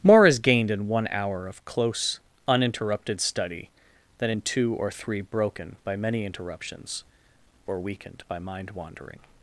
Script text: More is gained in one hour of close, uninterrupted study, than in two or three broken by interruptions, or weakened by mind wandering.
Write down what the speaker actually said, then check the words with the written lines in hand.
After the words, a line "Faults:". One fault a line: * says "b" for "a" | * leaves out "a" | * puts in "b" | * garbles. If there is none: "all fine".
More is gained in one hour of close, uninterrupted study, than in two or three broken by many interruptions, or weakened by mind wandering.
Faults:
* puts in "many"